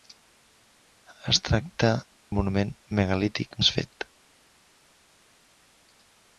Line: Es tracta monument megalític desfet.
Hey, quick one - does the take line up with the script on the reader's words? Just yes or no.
yes